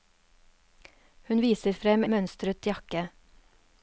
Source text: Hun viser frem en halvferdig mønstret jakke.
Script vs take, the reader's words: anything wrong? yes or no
yes